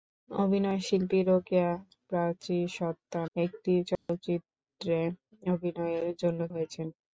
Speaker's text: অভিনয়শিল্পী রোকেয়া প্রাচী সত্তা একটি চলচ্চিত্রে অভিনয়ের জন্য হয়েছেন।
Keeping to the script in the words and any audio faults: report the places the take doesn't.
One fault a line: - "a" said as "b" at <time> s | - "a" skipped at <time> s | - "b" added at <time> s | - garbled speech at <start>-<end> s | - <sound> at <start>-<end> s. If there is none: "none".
- dropout at 4.0-4.1 s